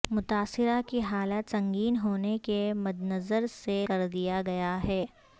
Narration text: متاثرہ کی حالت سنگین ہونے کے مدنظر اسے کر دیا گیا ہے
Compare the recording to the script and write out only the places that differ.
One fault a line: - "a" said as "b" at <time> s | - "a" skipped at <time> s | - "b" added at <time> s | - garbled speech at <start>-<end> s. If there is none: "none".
none